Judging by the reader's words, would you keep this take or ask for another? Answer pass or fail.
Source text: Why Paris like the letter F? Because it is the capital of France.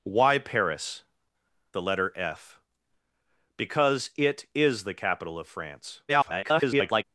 fail